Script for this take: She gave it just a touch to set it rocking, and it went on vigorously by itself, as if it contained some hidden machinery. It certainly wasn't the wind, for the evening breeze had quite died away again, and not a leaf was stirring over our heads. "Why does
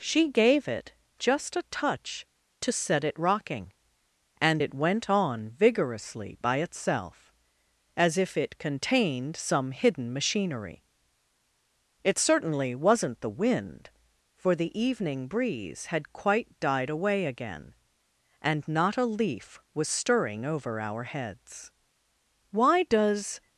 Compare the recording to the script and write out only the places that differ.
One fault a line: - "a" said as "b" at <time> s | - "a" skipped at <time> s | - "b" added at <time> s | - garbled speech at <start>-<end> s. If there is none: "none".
none